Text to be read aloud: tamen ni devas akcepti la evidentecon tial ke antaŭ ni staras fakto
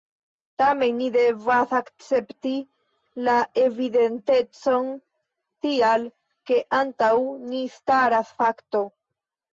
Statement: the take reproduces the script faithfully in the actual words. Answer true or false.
true